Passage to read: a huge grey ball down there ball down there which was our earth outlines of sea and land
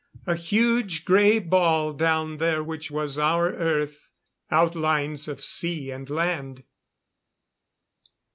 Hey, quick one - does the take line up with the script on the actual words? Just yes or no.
no